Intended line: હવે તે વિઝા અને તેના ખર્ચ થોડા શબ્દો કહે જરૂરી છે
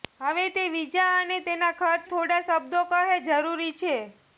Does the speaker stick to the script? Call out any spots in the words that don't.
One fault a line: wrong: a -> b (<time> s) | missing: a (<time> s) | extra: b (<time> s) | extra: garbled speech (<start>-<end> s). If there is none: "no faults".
no faults